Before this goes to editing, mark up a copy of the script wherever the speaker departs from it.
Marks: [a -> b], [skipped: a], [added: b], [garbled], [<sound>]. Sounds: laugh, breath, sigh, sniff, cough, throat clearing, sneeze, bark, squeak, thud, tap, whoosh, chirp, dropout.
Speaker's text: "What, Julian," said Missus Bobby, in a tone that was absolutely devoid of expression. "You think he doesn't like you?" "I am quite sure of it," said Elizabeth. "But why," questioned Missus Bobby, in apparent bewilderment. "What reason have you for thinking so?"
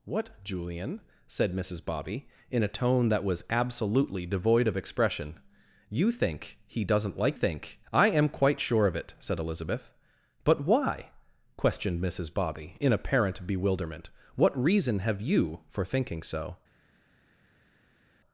"What, Julian," said Missus Bobby, in a tone that was absolutely devoid of expression. "You think he doesn't like [you?" -> think] "I am quite sure of it," said Elizabeth. "But why," questioned Missus Bobby, in apparent bewilderment. "What reason have you for thinking so?"